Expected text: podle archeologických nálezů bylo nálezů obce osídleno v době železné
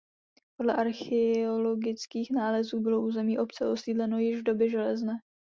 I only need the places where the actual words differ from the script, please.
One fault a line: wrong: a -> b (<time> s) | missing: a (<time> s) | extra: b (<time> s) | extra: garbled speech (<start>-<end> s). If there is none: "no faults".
wrong: nálezů -> území (3.0 s)
extra: již (4.2 s)